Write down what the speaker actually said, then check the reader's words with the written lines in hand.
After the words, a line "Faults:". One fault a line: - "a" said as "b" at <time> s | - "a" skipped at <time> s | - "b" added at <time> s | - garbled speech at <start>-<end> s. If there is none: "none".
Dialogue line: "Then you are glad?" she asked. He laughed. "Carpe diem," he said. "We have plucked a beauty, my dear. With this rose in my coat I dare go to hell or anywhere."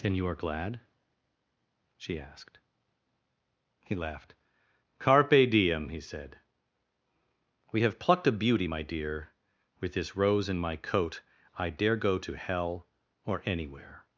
"Then you are glad?" she asked. He laughed. "Carpe diem," he said. "We have plucked a beauty, my dear. With this rose in my coat I dare go to hell or anywhere."
Faults:
none